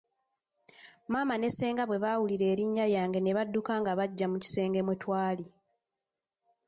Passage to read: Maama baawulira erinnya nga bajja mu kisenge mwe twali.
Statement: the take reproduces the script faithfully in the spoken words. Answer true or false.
false